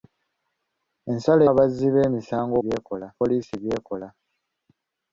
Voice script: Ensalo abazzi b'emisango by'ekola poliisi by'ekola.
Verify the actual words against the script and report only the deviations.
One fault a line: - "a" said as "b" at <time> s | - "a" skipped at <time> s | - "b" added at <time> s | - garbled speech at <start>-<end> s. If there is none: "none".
none